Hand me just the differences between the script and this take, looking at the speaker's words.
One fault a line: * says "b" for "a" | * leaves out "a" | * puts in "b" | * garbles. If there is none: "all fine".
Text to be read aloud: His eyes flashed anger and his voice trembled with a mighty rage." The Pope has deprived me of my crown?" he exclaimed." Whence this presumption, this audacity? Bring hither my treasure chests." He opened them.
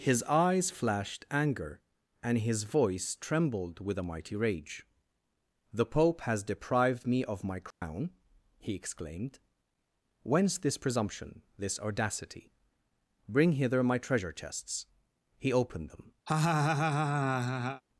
all fine